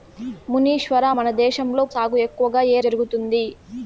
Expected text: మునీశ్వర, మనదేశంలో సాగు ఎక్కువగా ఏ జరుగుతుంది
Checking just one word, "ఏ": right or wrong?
right